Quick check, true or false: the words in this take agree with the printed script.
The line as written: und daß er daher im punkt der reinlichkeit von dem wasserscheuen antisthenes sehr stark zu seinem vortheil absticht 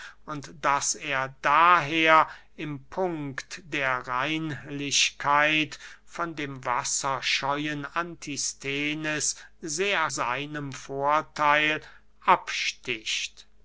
false